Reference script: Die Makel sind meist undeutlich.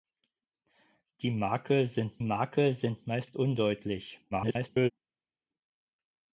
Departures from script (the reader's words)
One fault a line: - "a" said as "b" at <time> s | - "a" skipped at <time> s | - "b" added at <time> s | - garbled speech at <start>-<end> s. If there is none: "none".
- "Makel sind" added at 2.2 s
- garbled speech at 4.3-4.9 s